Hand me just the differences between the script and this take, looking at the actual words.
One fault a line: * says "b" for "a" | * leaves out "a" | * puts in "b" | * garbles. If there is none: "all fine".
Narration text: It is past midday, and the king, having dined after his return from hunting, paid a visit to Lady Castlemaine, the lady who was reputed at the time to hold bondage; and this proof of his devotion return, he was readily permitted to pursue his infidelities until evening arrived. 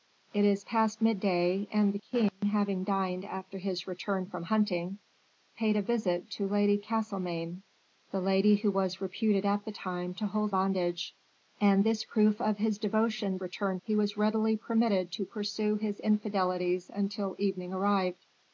all fine